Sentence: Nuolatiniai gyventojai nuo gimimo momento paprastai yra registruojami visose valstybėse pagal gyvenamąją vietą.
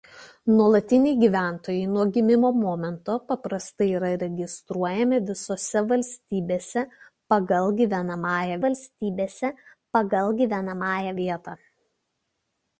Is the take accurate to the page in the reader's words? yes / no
no